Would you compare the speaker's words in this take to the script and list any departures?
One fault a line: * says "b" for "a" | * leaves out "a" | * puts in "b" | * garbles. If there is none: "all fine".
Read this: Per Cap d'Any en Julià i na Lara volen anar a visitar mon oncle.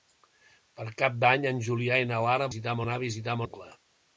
* says "visitar" for "volen"
* leaves out "mon"